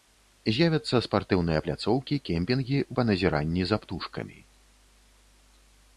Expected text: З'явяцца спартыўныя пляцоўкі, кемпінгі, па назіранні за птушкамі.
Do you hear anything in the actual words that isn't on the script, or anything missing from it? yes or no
no